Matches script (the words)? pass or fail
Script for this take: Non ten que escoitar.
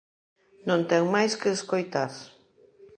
fail